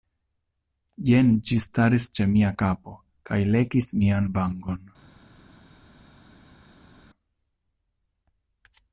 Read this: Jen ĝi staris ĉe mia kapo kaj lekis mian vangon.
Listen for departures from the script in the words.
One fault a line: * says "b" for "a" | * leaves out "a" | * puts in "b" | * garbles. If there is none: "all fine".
all fine